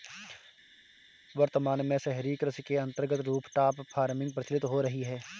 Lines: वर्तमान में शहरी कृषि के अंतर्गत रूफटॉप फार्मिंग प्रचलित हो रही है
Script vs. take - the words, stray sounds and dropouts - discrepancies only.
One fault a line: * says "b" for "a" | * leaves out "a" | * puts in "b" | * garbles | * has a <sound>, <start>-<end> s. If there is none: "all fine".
all fine